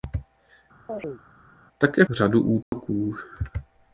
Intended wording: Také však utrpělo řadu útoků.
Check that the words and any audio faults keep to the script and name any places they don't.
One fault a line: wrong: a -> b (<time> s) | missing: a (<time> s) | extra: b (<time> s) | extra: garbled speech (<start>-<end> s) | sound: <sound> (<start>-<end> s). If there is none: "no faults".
sound: chirp (0.9-1.2 s)
missing: však utrpělo (2.0 s)
sound: dropout (2.6-2.7 s)